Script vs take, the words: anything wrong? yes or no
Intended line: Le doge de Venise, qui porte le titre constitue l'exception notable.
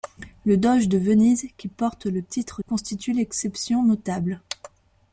no